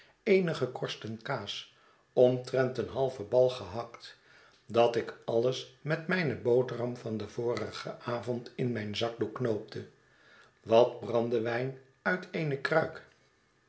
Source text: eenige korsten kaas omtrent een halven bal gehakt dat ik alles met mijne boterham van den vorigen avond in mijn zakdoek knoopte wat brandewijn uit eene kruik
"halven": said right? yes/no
yes